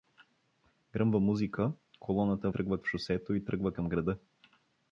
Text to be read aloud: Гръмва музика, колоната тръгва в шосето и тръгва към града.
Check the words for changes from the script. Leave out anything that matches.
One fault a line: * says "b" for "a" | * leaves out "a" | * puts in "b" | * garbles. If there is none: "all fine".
all fine